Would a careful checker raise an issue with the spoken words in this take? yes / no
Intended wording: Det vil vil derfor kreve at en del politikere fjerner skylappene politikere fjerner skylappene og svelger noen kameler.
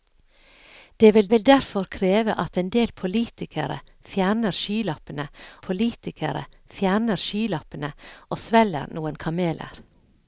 no